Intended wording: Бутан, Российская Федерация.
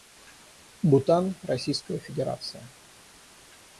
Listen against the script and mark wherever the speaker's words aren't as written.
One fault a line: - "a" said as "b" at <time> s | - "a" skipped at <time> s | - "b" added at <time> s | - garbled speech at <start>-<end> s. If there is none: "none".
none